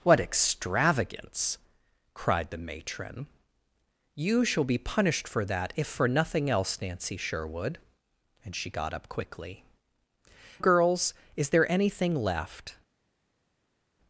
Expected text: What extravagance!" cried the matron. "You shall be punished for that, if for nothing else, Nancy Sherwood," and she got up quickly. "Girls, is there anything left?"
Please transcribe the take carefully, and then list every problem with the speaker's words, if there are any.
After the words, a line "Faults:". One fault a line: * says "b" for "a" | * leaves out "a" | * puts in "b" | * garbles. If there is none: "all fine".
What extravagance!" cried the matron. "You shall be punished for that, if for nothing else, Nancy Sherwood," and she got up quickly. "Girls, is there anything left?"
Faults:
all fine